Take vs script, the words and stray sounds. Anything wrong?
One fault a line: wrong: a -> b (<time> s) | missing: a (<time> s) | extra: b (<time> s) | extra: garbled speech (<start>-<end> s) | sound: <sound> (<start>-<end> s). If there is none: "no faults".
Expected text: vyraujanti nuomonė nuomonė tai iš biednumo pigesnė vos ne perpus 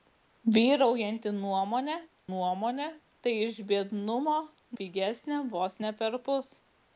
no faults